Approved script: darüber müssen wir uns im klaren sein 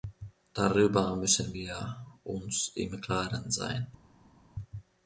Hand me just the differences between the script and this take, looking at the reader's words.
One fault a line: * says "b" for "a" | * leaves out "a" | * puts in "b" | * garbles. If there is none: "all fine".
all fine